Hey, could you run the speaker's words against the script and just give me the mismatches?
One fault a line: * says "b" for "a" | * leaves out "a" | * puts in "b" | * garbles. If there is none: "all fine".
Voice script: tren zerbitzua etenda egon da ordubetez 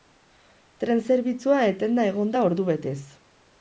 all fine